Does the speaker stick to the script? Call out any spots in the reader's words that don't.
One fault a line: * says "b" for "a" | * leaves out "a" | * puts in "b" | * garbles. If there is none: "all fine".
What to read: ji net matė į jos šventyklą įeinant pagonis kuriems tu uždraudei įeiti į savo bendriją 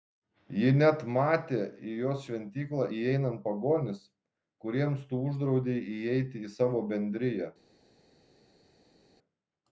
all fine